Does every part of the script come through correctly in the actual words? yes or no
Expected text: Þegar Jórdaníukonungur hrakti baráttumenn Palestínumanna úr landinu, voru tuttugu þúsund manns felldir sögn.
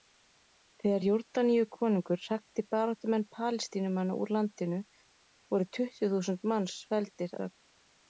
yes